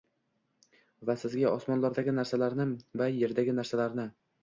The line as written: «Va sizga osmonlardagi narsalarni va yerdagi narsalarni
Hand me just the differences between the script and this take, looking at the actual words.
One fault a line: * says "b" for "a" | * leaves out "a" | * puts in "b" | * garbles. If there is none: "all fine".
all fine